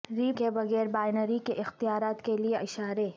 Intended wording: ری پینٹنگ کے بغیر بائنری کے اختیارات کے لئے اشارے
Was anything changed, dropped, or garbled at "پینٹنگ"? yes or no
yes